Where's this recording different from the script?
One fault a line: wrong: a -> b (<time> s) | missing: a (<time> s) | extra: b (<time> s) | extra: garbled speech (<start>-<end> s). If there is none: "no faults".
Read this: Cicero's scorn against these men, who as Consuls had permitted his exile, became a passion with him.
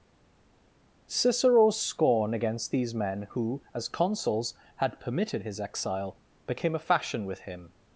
wrong: passion -> fashion (6.8 s)